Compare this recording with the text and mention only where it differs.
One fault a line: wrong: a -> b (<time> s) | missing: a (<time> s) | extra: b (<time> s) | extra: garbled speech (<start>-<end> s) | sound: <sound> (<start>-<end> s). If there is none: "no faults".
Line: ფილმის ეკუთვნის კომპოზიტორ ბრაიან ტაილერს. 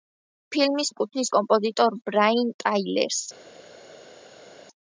no faults